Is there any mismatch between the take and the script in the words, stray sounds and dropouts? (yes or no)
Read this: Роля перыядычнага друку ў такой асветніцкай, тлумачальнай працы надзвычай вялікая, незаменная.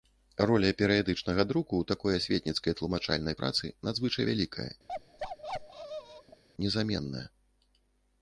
yes